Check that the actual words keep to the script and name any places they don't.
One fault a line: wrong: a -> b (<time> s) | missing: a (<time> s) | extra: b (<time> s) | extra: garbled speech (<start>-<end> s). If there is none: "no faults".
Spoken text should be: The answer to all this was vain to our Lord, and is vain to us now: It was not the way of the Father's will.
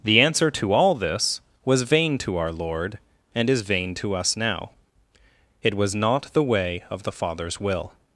no faults